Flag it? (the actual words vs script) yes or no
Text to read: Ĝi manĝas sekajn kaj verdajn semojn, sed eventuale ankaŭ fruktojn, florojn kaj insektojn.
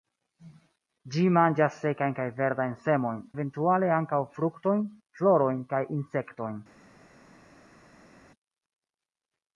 yes